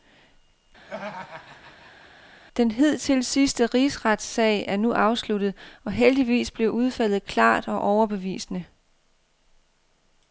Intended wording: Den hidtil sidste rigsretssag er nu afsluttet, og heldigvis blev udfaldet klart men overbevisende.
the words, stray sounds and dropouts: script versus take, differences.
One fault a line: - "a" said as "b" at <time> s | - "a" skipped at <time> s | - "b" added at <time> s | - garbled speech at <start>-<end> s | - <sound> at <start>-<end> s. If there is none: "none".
- laugh at 0.8-2.1 s
- "men" said as "og" at 7.7 s